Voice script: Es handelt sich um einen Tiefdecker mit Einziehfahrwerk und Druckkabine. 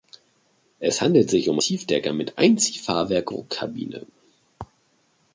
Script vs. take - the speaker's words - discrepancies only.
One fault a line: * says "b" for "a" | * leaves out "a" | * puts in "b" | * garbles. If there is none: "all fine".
* leaves out "einen"
* leaves out "und"